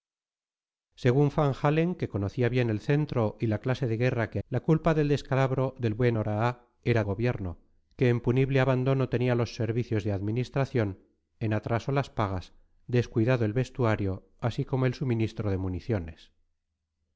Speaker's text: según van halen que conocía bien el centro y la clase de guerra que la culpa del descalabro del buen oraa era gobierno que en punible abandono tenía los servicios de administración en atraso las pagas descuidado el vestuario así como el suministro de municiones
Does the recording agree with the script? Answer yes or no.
yes